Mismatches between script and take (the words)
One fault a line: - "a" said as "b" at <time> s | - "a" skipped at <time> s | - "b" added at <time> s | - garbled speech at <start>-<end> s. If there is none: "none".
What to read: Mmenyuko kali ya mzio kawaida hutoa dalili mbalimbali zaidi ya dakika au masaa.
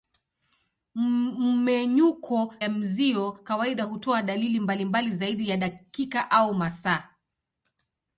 - "kali" skipped at 2.5 s